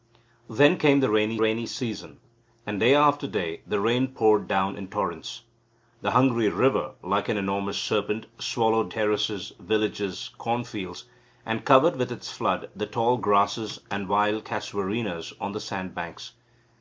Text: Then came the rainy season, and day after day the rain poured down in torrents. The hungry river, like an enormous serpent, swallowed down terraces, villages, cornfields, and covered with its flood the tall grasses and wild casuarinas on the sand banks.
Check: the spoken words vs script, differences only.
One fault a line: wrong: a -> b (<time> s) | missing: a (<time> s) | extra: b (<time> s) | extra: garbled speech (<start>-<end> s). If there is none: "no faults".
extra: rainy (1.4 s)
missing: down (8.9 s)